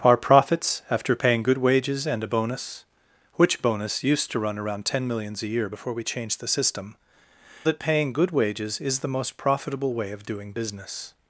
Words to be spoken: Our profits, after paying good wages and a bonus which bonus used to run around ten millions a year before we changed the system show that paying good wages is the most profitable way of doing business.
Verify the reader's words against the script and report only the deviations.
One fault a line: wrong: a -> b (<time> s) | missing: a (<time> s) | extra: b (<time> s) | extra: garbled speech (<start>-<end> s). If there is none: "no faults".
missing: show (7.0 s)